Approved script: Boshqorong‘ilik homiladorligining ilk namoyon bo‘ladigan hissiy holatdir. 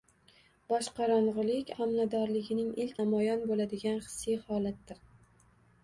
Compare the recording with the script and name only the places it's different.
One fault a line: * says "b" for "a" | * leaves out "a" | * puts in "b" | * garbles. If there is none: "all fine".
all fine